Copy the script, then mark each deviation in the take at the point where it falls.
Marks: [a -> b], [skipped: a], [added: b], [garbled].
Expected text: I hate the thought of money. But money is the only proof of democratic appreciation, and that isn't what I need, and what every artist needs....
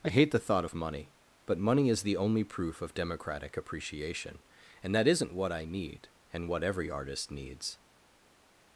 I hate the thought of money. But money is the only proof of democratic appreciation, and that isn't what I need, and what every artist needs....